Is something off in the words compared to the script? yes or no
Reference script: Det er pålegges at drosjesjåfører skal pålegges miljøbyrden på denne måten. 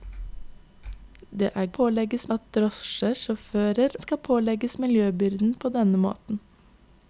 no